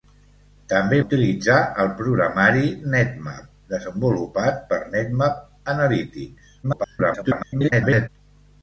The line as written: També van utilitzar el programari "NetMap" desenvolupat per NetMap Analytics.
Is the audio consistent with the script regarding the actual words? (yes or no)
no